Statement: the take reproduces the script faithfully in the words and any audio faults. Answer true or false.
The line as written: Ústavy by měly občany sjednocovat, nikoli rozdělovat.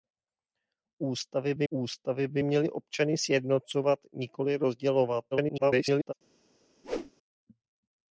false